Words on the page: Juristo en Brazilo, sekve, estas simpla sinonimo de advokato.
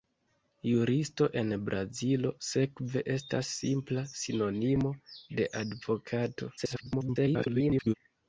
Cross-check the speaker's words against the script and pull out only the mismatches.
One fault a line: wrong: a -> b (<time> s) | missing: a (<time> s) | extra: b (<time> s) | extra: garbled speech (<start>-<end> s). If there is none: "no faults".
extra: garbled speech (6.6-7.9 s)